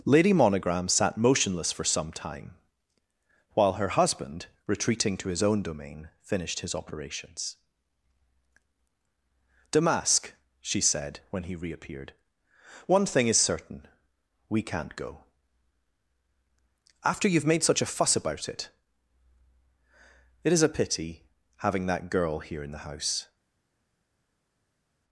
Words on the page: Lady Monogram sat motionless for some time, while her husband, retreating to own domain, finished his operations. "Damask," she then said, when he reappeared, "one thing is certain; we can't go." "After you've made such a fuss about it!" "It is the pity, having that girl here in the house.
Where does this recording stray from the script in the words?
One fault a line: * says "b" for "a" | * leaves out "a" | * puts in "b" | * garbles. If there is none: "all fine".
* puts in "his"
* leaves out "then"
* says "a" for "the"